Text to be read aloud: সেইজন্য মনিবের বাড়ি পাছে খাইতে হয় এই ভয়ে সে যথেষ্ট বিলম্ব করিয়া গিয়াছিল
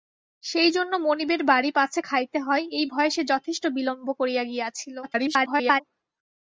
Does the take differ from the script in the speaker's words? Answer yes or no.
yes